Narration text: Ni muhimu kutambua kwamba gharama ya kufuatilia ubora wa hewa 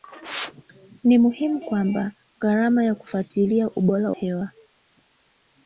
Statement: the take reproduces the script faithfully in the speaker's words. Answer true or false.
false